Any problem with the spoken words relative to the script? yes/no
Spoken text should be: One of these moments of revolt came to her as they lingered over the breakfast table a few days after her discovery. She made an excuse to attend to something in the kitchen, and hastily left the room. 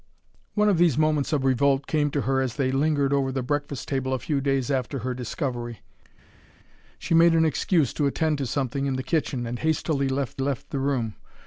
yes